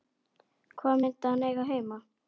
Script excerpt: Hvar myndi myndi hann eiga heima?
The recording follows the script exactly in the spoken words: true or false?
false